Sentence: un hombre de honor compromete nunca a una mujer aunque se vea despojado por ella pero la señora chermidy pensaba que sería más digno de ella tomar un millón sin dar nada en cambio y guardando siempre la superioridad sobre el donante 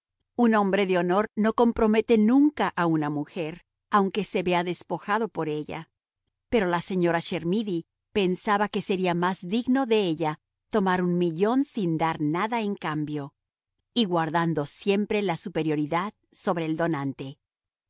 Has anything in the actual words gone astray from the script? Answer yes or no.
yes